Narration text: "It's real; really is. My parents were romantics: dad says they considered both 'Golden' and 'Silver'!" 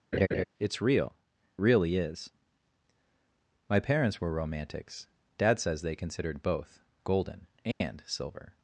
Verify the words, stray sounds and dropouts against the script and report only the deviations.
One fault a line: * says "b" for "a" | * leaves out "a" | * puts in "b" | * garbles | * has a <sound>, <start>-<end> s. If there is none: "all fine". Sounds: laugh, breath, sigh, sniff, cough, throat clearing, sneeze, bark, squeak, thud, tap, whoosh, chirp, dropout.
* has a laugh, 0.1-0.4 s
* has a dropout, 7.7-7.8 s